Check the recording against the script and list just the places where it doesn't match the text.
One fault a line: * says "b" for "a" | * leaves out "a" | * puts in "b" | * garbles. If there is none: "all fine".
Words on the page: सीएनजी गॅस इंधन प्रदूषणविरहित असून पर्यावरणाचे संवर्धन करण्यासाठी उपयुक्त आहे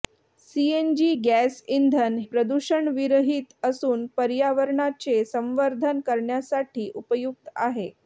all fine